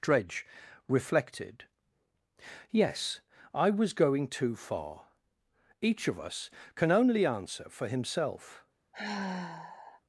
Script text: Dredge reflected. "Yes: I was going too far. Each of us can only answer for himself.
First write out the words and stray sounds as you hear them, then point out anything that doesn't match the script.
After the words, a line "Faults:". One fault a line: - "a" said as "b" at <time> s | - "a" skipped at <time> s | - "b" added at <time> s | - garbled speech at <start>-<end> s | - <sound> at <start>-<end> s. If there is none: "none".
Dredge reflected. "Yes: I was going too far. Each of us can only answer for himself.
Faults:
- sigh at 8.9-10.0 s